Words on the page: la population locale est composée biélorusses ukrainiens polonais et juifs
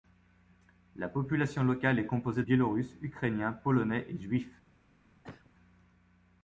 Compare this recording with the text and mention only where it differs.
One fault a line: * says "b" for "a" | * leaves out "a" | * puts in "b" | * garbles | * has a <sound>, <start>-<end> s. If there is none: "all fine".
* has a cough, 5.2-5.5 s